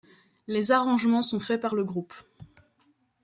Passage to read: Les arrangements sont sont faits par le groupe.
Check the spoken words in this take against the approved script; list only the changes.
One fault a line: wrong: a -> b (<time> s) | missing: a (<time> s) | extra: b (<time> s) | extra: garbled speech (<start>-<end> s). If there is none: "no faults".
missing: sont (1.4 s)